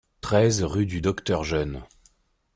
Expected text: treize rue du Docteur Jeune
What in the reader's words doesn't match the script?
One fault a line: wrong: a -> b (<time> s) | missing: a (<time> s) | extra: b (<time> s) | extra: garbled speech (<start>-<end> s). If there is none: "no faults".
no faults